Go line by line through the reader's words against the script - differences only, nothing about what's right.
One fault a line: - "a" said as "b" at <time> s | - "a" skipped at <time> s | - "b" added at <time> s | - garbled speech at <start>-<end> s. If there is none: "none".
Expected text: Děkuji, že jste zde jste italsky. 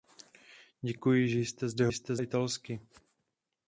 none